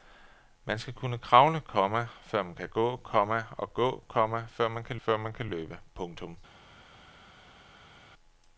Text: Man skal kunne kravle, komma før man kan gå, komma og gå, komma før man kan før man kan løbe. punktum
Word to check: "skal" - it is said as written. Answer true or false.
true